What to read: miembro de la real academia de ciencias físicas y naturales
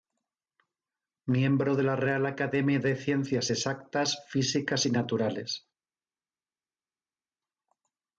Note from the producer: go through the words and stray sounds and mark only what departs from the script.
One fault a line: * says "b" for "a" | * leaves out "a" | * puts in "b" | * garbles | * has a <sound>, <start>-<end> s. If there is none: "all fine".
* puts in "exactas"